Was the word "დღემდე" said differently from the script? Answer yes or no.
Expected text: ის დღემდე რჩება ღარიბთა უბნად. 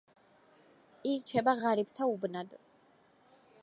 yes